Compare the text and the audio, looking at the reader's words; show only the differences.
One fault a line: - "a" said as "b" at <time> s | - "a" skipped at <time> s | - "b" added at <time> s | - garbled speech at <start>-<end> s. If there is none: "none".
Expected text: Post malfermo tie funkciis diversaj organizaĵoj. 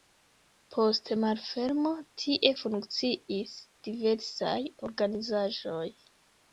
none